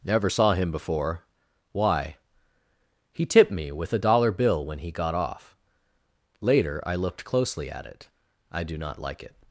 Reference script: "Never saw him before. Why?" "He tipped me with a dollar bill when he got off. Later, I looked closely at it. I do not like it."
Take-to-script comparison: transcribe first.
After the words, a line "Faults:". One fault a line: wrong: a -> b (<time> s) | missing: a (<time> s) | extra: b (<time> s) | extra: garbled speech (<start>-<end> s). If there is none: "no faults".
"Never saw him before. Why?" "He tipped me with a dollar bill when he got off. Later, I looked closely at it. I do not like it."
Faults:
no faults